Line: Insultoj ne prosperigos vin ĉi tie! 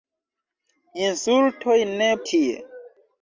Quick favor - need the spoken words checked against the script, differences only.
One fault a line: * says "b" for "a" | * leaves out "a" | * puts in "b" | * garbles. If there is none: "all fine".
* leaves out "prosperigos vin ĉi"